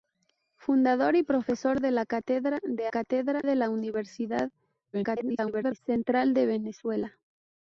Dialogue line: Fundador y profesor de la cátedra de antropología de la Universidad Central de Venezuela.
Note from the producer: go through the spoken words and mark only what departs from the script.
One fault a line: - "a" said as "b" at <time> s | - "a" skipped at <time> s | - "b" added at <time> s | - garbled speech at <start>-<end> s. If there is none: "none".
- "antropología" said as "cátedra" at 2.9 s
- garbled speech at 4.9-5.8 s